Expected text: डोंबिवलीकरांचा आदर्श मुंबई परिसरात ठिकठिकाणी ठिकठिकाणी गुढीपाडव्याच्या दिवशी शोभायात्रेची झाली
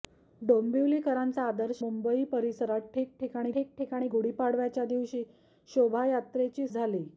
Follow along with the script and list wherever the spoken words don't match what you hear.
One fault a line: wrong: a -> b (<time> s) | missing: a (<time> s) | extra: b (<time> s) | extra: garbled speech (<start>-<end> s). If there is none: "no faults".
no faults